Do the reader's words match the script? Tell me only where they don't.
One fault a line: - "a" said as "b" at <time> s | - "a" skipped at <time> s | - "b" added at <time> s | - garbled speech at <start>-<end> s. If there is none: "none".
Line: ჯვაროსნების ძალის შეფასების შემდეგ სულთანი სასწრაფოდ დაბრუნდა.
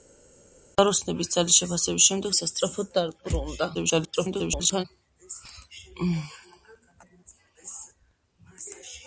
- "სულთანი" skipped at 2.3 s
- garbled speech at 3.7-4.9 s